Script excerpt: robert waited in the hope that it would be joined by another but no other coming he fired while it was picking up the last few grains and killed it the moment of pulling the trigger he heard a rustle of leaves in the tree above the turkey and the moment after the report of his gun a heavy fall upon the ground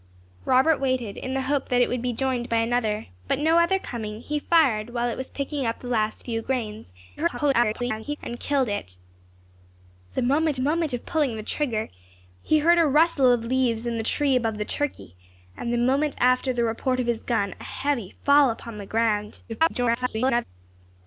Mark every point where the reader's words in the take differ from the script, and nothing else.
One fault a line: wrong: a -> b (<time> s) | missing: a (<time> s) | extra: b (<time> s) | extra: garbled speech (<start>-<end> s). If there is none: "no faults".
extra: garbled speech (7.2-8.2 s)
extra: moment (10.6 s)
extra: garbled speech (19.5-20.4 s)